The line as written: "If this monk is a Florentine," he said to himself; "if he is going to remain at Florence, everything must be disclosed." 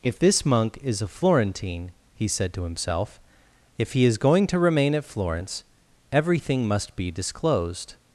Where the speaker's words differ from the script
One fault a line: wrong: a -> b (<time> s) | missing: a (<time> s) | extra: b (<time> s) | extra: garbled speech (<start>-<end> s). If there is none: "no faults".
no faults